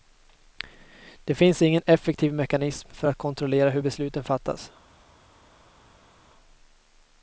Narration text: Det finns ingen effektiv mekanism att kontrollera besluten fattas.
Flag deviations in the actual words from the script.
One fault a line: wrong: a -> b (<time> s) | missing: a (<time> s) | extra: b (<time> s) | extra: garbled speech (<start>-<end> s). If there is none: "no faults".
extra: för (2.9 s)
extra: hur (3.7 s)